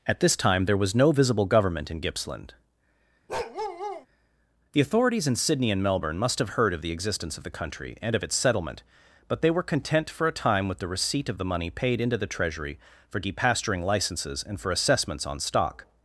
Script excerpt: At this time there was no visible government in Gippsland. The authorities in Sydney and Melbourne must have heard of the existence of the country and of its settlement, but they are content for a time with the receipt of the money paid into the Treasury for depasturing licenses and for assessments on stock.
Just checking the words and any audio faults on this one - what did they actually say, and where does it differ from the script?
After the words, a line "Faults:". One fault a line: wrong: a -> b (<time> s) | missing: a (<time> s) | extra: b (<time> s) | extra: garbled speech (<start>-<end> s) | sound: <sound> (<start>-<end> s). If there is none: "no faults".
At this time there was no visible government in Gippsland. The authorities in Sydney and Melbourne must have heard of the existence of the country and of its settlement, but they were content for a time with the receipt of the money paid into the Treasury for depasturing licenses and for assessments on stock.
Faults:
sound: bark (3.3-4.1 s)
wrong: are -> were (9.5 s)